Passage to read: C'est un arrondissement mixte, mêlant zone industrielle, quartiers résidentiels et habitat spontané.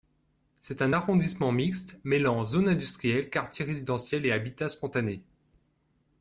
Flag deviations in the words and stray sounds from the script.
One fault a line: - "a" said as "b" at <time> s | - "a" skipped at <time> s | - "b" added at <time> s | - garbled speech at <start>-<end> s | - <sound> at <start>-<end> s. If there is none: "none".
none